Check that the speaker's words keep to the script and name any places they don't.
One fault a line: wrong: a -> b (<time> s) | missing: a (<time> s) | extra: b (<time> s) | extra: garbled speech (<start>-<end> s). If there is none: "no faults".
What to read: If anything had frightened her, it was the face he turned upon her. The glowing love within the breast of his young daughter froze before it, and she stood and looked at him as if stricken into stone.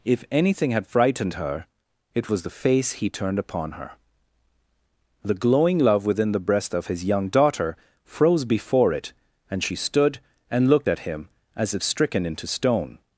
no faults